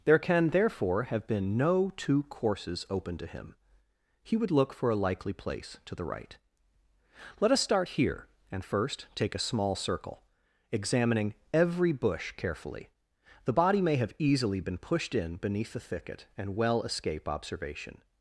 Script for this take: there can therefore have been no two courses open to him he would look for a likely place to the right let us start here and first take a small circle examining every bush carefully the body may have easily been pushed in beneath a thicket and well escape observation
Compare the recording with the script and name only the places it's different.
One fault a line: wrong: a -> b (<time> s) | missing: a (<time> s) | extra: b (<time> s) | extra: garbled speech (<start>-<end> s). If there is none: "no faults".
wrong: a -> the (15.7 s)